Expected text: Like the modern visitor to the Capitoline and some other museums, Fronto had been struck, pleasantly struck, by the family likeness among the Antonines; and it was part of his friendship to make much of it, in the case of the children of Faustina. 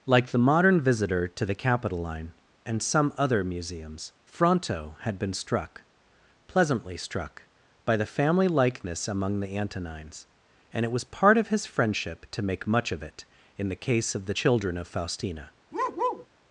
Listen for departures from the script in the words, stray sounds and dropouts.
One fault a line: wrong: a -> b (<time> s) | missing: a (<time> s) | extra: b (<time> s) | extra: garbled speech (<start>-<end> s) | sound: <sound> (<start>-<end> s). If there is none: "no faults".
sound: bark (15.7-16.3 s)